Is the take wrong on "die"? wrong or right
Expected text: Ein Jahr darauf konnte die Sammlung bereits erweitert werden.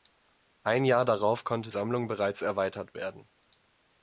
wrong